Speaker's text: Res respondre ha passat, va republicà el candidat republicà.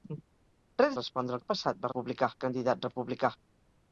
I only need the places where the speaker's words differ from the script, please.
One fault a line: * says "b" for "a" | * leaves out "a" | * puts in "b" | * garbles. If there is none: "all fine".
all fine